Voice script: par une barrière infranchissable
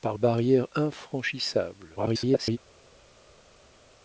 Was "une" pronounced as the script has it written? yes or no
no